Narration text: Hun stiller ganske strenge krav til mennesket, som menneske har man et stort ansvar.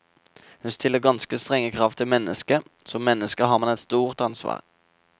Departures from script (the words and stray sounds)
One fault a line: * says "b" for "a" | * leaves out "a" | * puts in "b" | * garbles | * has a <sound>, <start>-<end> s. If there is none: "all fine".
all fine